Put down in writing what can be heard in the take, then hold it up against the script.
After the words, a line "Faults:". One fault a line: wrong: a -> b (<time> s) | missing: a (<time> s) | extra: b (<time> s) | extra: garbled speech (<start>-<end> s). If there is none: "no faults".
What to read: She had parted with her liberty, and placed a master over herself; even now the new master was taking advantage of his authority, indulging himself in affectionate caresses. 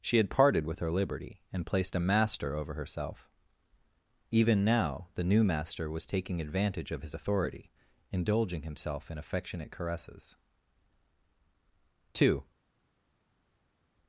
She had parted with her liberty, and placed a master over herself; even now the new master was taking advantage of his authority, indulging himself in affectionate caresses. Two
Faults:
extra: Two (12.1 s)